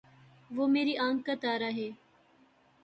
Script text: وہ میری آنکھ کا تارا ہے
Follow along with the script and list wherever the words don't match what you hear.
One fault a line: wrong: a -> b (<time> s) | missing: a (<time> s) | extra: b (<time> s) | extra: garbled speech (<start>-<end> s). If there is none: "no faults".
no faults